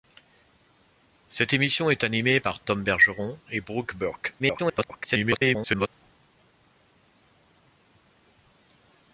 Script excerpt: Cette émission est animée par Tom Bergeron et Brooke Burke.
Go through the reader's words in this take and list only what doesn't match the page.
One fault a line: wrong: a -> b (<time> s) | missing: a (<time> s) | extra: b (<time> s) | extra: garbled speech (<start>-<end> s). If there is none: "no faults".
extra: garbled speech (4.4-5.9 s)